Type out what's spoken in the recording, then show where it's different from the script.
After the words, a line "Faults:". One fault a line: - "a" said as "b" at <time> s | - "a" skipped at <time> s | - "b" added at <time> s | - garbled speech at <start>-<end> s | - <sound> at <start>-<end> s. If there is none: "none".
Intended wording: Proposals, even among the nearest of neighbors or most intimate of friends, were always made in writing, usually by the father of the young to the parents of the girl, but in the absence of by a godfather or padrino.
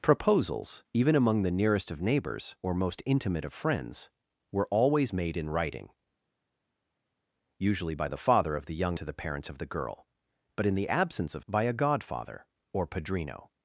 Proposals, even among the nearest of neighbors or most intimate of friends, were always made in writing, usually by the father of the young to the parents of the girl, but in the absence of by a godfather or padrino.
Faults:
none